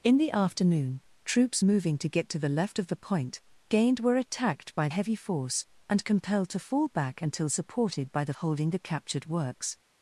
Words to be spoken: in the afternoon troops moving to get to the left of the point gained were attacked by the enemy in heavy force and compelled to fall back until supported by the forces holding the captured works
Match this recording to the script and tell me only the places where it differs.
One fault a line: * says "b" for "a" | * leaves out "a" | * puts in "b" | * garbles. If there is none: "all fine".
* leaves out "the enemy in"
* leaves out "forces"